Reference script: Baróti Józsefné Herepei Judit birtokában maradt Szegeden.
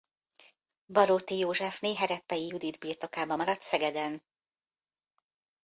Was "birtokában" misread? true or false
false